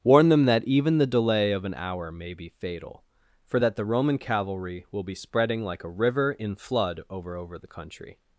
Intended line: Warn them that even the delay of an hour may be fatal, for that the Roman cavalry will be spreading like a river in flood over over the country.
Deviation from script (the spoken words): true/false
false